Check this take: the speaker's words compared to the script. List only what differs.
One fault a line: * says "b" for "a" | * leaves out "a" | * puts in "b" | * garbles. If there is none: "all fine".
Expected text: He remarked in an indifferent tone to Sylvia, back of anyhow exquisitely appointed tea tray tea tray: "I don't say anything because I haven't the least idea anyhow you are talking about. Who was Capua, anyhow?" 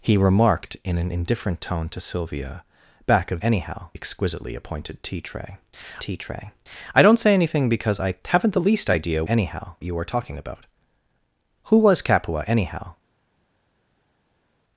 all fine